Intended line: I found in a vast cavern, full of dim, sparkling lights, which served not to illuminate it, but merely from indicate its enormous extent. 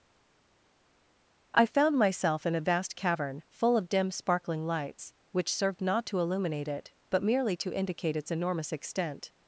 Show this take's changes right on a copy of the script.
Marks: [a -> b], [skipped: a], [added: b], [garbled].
I found [added: myself] in a vast cavern, full of dim, sparkling lights, which served not to illuminate it, but merely [from -> to] indicate its enormous extent.